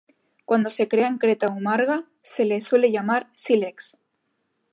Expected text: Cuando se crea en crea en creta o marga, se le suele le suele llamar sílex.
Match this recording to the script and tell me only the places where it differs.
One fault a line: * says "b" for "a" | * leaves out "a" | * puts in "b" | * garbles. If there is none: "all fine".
* leaves out "crea en"
* leaves out "le suele"